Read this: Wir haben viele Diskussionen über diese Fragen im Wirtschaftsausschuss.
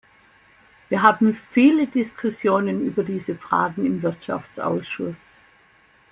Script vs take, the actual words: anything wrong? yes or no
no